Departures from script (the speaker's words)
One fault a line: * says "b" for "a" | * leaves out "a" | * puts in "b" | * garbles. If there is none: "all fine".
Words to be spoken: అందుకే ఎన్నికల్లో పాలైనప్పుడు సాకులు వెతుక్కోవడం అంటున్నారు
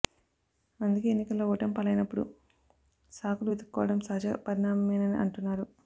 * puts in "ఓటమి"
* puts in "సహజ పరిణామమేనని"